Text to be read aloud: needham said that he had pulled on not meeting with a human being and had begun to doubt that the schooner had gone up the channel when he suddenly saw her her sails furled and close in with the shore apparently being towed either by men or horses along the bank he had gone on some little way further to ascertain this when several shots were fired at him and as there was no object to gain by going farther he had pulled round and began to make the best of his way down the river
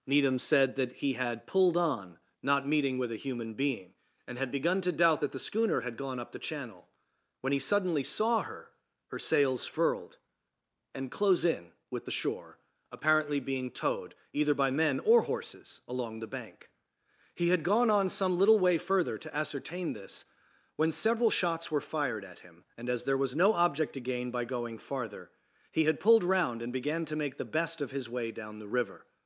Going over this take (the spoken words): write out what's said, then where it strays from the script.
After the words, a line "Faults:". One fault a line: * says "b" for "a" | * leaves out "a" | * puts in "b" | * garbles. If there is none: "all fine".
needham said that he had pulled on not meeting with a human being and had begun to doubt that the schooner had gone up the channel when he suddenly saw her her sails furled and close in with the shore apparently being towed either by men or horses along the bank he had gone on some little way further to ascertain this when several shots were fired at him and as there was no object to gain by going farther he had pulled round and began to make the best of his way down the river
Faults:
all fine